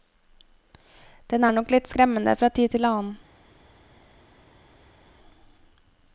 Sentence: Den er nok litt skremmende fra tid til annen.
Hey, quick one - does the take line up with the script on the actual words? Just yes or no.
yes